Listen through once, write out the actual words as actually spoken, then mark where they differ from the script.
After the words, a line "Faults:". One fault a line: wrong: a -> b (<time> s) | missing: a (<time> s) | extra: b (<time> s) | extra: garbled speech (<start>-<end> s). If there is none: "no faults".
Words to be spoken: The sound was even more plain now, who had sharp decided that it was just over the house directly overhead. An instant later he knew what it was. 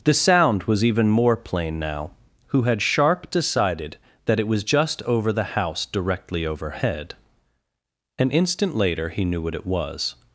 The sound was even more plain now, who had sharp decided that it was just over the house directly overhead. An instant later he knew what it was.
Faults:
no faults